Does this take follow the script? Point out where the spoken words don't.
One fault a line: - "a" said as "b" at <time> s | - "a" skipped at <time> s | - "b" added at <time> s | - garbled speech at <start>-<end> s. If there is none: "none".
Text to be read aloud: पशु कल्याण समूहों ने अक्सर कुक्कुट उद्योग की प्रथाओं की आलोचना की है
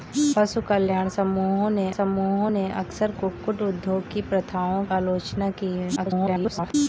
- "समूहों ने" added at 1.9 s
- "की" skipped at 4.8 s
- garbled speech at 6.0-6.7 s